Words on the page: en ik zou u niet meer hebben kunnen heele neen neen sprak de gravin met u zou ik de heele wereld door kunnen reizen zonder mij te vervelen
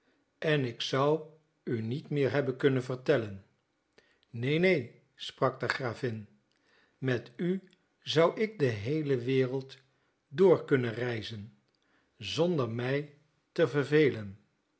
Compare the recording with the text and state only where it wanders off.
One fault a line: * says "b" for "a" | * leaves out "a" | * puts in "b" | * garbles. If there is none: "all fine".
* says "vertellen" for "heele"